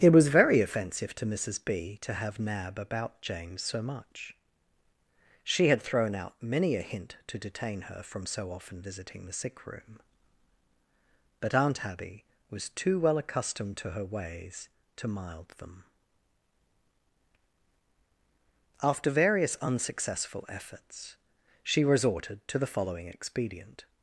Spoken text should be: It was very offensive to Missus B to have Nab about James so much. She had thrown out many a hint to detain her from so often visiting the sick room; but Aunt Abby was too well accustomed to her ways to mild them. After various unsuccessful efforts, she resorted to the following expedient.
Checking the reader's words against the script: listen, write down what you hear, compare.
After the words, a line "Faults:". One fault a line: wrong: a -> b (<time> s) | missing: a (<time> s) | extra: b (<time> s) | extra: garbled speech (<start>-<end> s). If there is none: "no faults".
It was very offensive to Missus B to have Nab about James so much. She had thrown out many a hint to detain her from so often visiting the sick room; but Aunt Abby was too well accustomed to her ways to mild them. After various unsuccessful efforts, she resorted to the following expedient.
Faults:
no faults